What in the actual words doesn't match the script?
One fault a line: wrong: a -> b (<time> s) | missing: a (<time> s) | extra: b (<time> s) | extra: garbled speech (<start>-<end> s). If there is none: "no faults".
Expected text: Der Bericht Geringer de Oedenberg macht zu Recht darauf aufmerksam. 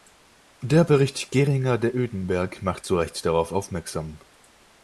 no faults